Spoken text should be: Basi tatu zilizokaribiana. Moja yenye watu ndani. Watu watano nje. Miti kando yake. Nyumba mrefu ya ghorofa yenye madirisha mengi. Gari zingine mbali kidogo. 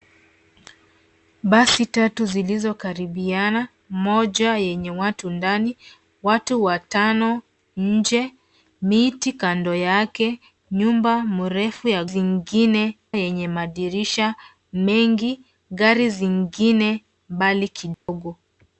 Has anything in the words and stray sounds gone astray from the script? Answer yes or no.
yes